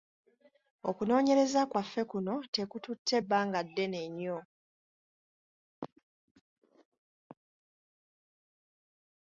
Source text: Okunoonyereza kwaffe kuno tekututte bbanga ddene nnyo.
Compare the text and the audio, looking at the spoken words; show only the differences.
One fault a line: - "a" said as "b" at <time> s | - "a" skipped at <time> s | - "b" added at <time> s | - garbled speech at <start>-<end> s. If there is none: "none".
none